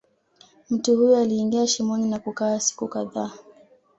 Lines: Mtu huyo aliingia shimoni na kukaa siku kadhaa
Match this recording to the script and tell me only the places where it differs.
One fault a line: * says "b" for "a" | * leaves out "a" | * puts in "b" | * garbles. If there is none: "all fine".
all fine